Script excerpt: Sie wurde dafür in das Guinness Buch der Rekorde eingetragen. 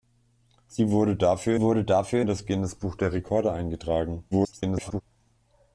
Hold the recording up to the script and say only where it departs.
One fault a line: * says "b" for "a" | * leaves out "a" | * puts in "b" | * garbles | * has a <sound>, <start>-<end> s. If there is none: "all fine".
* puts in "wurde dafür"
* garbles